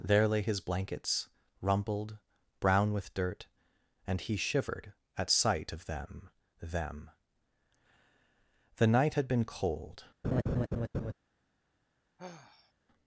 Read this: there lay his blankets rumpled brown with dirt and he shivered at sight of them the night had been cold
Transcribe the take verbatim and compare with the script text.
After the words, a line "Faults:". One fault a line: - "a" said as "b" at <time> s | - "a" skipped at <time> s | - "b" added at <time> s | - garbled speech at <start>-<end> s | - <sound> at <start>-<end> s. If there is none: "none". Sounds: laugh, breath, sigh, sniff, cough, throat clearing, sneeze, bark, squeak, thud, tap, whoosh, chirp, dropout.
there lay his blankets rumpled brown with dirt and he shivered at sight of them them the night had been cold
Faults:
- "them" added at 6.6 s
- laugh at 10.2-11.1 s
- sigh at 12.2-12.7 s